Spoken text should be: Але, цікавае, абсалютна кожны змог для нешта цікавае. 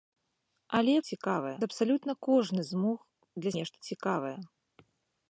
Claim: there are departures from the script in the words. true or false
false